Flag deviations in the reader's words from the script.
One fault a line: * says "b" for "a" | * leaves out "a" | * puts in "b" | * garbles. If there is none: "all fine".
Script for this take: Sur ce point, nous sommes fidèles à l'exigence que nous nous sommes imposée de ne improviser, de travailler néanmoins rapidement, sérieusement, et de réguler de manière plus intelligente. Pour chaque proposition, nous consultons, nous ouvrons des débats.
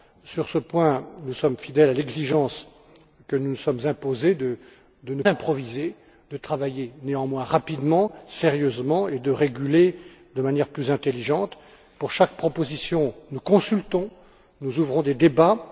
all fine